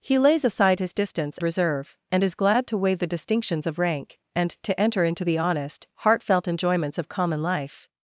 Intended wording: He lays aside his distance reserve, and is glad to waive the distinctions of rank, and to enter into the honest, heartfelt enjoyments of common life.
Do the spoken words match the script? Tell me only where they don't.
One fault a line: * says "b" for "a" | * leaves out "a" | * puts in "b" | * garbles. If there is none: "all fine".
all fine